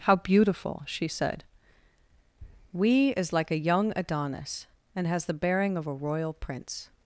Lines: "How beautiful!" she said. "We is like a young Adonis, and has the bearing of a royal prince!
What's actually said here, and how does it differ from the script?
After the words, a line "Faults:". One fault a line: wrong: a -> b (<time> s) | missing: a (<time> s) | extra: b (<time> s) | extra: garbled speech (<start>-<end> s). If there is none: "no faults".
"How beautiful!" she said. "We is like a young Adonis, and has the bearing of a royal prince!
Faults:
no faults